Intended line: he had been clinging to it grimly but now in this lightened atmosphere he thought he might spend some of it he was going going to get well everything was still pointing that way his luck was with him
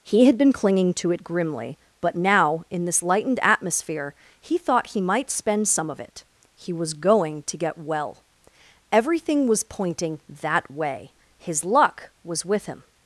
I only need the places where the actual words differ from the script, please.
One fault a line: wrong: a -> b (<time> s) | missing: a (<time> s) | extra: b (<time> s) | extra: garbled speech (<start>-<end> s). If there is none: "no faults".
missing: going (7.4 s)
missing: still (9.6 s)